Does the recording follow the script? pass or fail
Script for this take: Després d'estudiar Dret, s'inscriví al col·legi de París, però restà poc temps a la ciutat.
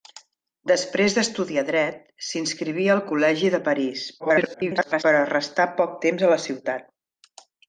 fail